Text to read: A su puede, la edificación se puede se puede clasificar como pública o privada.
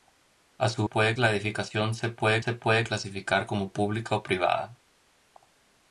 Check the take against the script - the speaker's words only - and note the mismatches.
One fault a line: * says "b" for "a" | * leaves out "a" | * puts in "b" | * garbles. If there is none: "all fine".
all fine